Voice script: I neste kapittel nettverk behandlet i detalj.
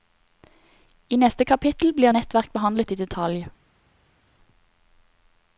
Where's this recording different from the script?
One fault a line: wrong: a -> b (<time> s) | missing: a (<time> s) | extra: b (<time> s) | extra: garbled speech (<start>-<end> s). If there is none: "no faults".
extra: blir (1.9 s)